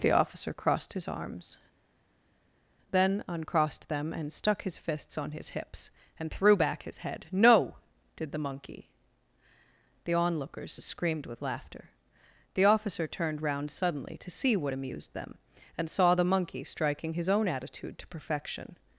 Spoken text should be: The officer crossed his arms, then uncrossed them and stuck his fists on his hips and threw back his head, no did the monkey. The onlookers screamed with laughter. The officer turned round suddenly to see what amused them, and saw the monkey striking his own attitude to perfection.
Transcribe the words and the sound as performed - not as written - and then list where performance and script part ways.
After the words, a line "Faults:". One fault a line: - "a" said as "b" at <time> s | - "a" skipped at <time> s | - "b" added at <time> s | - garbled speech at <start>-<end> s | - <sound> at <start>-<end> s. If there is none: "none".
The officer crossed his arms, then uncrossed them and stuck his fists on his hips and threw back his head, no did the monkey. The onlookers screamed with laughter. The officer turned round suddenly to see what amused them, and saw the monkey striking his own attitude to perfection.
Faults:
none